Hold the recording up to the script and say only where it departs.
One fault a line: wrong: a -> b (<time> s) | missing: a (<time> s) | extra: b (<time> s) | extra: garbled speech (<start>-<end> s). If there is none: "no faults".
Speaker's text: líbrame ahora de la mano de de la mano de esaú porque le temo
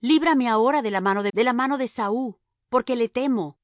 no faults